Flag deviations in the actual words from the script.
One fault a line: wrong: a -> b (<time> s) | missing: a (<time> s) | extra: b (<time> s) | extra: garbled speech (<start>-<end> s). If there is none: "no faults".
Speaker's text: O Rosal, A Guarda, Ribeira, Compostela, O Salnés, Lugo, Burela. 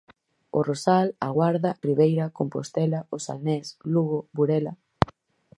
no faults